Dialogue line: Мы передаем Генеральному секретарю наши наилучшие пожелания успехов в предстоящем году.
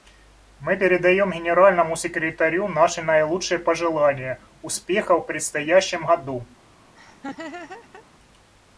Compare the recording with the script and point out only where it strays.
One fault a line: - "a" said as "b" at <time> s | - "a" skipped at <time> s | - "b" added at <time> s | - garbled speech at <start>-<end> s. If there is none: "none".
none